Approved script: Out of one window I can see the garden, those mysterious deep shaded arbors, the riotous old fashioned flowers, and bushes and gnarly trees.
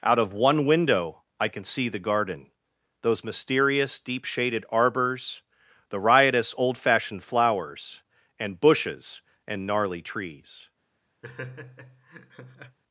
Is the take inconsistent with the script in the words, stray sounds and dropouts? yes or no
yes